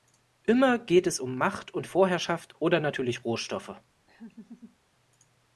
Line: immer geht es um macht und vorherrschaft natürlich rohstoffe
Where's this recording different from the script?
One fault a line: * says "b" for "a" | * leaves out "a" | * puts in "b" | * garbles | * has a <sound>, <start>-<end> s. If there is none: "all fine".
* puts in "oder"
* has a laugh, 4.1-4.8 s